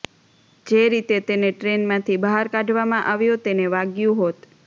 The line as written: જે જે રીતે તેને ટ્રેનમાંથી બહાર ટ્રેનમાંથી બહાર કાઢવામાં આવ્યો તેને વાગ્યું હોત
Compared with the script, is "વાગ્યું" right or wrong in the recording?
right